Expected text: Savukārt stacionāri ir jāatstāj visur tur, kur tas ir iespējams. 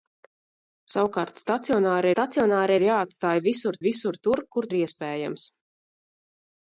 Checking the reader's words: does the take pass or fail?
fail